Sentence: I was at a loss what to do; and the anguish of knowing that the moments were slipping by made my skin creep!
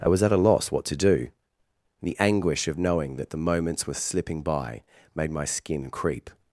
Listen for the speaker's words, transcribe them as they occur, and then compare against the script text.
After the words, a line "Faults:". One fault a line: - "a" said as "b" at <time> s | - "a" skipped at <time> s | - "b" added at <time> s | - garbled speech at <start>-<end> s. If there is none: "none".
I was at a loss what to do; the anguish of knowing that the moments were slipping by made my skin creep!
Faults:
- "and" skipped at 1.3 s